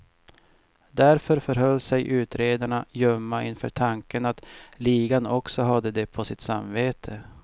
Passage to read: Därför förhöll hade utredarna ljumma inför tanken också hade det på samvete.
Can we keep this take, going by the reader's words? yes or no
no